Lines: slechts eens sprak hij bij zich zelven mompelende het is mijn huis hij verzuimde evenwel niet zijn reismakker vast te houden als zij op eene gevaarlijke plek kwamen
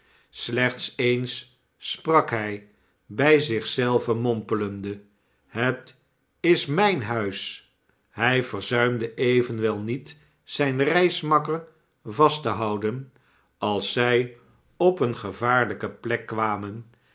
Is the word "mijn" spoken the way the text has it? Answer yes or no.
yes